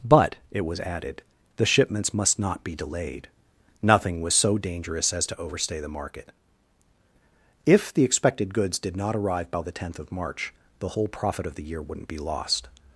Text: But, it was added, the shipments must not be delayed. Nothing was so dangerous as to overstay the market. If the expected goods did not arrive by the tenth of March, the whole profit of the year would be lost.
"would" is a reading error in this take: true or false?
true